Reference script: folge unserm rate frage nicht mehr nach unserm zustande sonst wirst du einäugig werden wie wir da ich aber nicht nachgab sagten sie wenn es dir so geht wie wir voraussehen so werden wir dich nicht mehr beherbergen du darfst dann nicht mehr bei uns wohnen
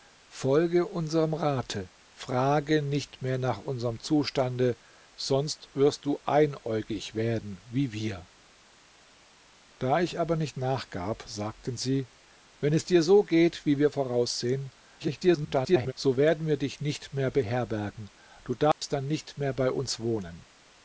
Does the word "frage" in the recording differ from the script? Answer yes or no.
no